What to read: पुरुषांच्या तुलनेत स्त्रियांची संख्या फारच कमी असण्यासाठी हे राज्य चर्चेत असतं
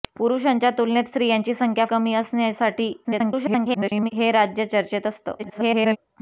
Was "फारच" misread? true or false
true